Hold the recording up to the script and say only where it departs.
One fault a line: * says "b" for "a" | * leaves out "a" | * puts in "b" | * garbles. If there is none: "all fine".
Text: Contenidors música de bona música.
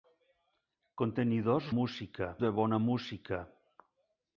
all fine